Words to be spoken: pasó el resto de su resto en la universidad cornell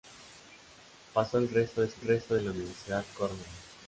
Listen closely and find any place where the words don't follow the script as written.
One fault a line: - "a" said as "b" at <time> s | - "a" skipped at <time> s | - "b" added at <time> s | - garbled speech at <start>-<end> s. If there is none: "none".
none